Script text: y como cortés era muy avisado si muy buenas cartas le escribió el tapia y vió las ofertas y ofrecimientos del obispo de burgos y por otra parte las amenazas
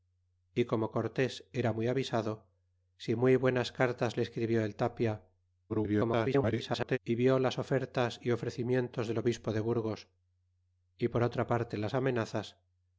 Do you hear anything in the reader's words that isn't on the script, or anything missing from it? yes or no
yes